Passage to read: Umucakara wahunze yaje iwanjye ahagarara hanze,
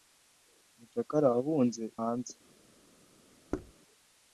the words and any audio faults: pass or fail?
fail